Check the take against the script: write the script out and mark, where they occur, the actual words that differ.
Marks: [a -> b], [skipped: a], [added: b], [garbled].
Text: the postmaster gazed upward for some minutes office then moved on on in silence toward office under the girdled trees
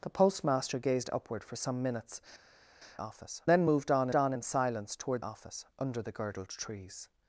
the postmaster gazed upward for some minutes office then moved on on in silence toward office under the girdled trees